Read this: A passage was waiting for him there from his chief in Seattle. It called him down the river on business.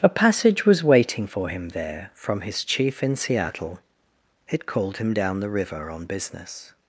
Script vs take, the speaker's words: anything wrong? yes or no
no